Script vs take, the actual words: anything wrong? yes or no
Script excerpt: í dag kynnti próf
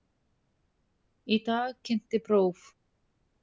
no